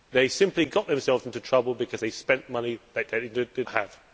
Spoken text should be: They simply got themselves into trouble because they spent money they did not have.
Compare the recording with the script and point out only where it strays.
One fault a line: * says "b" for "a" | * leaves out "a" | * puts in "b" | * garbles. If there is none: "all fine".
* leaves out "not"